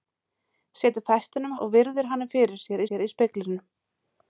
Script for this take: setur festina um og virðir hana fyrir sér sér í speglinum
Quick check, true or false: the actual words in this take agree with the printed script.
true